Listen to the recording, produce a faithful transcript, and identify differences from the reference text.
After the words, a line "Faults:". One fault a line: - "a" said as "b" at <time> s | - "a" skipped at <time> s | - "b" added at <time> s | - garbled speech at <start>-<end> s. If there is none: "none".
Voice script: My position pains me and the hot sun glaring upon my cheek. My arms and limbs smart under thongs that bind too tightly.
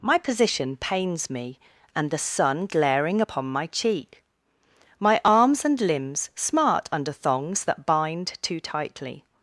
My position pains me and the sun glaring upon my cheek. My arms and limbs smart under thongs that bind too tightly.
Faults:
- "hot" skipped at 2.2 s